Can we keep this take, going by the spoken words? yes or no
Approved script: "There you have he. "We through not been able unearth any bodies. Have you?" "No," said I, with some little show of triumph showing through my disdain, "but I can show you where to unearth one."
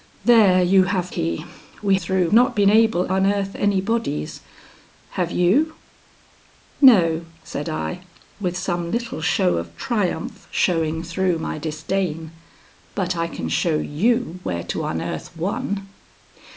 yes